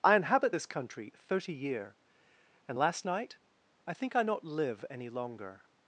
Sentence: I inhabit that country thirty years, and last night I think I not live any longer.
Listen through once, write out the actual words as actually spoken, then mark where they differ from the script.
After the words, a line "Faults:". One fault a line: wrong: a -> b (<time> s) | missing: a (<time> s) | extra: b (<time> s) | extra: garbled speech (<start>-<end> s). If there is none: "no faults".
I inhabit this country thirty year, and last night I think I not live any longer.
Faults:
wrong: that -> this (0.5 s)
wrong: years -> year (1.5 s)